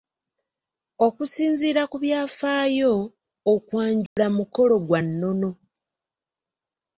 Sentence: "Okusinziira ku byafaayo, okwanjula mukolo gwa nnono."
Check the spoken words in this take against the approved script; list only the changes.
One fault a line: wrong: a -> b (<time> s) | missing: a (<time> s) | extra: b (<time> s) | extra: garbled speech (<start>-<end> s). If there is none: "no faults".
no faults